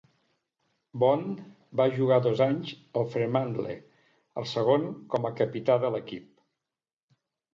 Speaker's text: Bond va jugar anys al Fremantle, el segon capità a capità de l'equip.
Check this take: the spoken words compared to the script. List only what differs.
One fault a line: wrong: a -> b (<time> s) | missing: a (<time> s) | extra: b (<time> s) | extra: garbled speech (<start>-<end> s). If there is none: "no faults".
extra: dos (2.3 s)
wrong: capità -> com (5.2 s)